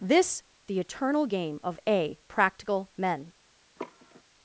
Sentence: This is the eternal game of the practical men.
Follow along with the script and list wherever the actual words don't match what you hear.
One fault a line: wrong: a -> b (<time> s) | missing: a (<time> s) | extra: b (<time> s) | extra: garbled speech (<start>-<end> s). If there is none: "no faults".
missing: is (0.4 s)
wrong: the -> a (1.9 s)